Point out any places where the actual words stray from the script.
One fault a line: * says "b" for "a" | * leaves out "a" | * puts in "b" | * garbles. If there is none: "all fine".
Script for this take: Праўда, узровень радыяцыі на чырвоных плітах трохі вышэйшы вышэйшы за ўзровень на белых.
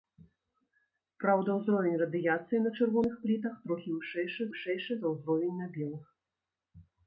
all fine